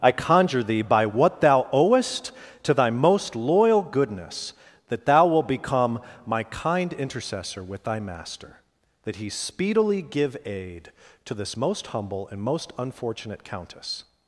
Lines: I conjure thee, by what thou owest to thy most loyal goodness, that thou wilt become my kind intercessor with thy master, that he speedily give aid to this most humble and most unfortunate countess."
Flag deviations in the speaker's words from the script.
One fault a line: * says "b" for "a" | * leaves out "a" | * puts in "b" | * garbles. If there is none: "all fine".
all fine